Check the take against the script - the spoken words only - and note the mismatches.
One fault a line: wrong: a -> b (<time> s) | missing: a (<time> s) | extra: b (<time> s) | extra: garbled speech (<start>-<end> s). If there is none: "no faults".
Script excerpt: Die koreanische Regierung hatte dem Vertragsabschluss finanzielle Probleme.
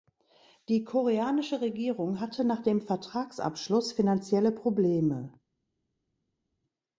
extra: nach (2.5 s)